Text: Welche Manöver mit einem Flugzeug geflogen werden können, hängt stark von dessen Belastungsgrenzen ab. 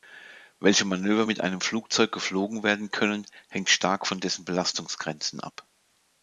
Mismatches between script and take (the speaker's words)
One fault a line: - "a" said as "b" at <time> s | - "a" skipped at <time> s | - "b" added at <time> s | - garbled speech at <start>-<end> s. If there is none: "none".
none